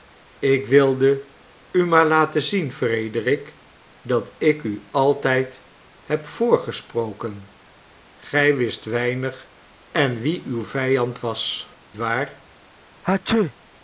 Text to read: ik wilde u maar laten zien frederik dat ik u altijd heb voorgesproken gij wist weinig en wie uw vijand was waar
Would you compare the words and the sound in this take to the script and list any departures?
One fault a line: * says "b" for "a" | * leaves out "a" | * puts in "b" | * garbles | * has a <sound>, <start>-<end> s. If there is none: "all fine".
* has a sneeze, 13.0-13.5 s